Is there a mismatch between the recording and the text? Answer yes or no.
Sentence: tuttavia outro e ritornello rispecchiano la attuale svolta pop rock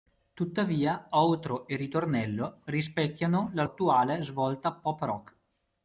no